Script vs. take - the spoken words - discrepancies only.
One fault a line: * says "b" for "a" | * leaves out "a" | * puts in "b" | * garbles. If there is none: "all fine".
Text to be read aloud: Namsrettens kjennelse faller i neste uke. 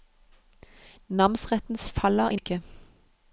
* leaves out "kjennelse"
* leaves out "neste"